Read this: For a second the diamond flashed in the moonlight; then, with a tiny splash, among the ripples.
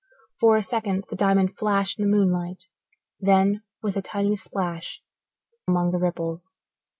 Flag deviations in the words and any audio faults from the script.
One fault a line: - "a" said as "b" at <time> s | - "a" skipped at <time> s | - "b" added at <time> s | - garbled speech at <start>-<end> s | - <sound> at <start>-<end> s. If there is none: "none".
none